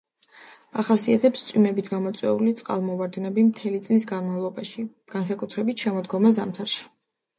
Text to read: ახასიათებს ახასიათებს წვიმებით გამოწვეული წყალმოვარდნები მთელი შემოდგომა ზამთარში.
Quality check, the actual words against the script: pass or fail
fail